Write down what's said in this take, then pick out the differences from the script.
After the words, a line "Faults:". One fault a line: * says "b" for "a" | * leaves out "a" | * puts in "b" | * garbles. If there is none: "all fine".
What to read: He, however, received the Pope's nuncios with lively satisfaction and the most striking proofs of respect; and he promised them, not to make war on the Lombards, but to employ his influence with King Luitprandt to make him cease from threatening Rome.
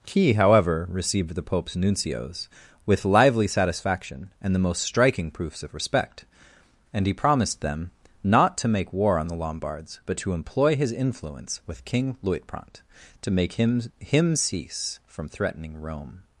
He, however, received the Pope's nuncios with lively satisfaction and the most striking proofs of respect; and he promised them, not to make war on the Lombards, but to employ his influence with King Luitprandt to make him him cease from threatening Rome.
Faults:
* puts in "him"